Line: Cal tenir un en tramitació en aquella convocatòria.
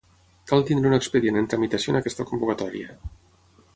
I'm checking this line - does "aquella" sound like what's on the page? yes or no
no